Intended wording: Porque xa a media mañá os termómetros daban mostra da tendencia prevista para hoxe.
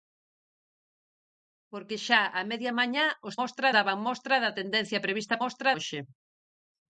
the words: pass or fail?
fail